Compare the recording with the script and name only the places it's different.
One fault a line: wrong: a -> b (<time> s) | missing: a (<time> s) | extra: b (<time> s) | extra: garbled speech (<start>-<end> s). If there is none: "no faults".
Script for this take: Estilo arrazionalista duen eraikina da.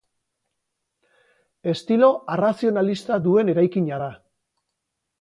no faults